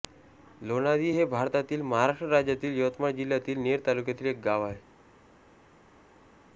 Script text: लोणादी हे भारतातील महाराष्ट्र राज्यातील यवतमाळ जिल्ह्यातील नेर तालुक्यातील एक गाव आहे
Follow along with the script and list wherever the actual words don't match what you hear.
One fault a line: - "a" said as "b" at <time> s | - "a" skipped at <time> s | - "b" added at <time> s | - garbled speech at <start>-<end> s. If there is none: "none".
none